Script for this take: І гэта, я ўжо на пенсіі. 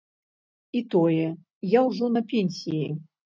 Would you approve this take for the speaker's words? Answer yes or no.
no